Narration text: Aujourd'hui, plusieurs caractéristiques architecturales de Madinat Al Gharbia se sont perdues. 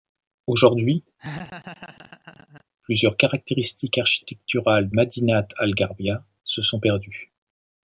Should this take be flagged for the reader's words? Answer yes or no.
yes